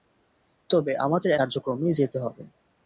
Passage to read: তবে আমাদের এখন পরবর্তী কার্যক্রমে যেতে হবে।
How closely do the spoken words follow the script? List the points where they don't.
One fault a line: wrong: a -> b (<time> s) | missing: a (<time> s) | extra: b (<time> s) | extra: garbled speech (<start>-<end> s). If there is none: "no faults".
missing: এখন পরবর্তী (1.3 s)